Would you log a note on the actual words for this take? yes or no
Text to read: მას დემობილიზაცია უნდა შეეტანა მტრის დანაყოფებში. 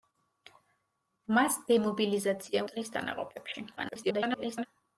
yes